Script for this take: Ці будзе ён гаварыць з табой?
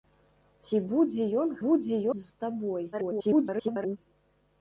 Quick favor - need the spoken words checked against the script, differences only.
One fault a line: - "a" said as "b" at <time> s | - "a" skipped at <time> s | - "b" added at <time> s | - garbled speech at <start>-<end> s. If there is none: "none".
- "гаварыць" said as "будзе" at 1.7 s
- garbled speech at 2.9-4.0 s